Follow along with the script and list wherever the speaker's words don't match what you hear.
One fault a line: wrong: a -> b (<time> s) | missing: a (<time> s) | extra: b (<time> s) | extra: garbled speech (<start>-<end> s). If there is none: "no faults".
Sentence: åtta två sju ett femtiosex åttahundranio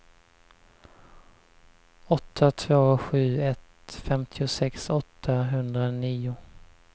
no faults